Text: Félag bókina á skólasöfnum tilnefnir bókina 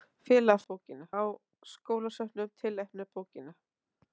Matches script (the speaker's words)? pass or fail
pass